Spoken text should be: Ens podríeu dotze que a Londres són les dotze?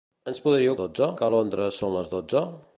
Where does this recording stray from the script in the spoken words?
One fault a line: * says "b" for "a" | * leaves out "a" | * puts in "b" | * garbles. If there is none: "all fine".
all fine